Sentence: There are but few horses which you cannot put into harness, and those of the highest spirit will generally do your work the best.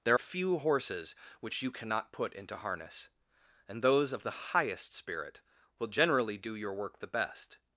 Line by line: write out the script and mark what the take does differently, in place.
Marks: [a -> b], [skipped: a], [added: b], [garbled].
There [skipped: are but] few horses which you cannot put into harness, and those of the highest spirit will generally do your work the best.